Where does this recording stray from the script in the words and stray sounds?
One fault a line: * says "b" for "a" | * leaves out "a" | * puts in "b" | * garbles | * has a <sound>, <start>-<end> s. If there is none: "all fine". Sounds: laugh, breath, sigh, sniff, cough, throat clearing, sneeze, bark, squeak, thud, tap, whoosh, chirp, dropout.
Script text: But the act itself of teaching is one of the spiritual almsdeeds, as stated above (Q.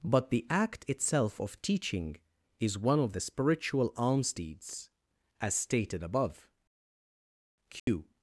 * has a dropout, 7.8-7.9 s